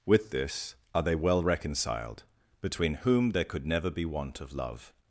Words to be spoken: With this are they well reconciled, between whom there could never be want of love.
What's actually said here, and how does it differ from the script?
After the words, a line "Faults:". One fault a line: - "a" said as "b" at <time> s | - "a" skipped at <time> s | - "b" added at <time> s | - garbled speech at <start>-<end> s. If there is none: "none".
With this are they well reconciled, between whom there could never be want of love.
Faults:
none